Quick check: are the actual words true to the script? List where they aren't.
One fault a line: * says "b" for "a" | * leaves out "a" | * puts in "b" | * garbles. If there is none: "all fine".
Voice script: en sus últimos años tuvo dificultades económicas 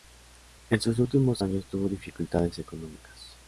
all fine